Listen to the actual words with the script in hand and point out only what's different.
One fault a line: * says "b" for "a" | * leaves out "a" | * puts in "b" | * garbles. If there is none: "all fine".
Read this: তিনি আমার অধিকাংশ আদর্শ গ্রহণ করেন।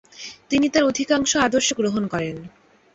* says "তার" for "আমার"